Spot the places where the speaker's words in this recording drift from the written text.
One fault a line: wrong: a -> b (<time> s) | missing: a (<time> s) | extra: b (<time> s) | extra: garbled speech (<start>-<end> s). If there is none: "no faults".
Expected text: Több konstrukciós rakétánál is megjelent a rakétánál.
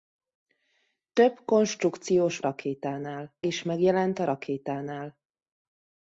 no faults